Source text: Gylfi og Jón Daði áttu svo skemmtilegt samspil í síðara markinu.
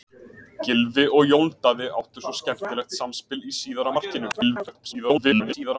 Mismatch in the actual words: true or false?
true